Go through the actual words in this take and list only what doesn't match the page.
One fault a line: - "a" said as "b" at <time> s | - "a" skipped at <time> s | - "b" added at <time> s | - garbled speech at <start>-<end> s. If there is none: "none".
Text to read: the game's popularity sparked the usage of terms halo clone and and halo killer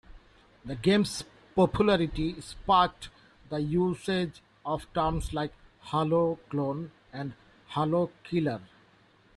- "like" added at 5.3 s
- "and" skipped at 7.3 s